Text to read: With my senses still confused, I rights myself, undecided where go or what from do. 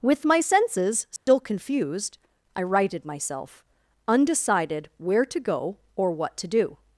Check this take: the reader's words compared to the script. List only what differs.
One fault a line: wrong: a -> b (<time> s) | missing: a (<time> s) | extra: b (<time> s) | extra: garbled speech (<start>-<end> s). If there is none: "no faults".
wrong: rights -> righted (2.6 s)
extra: to (5.2 s)
wrong: from -> to (6.4 s)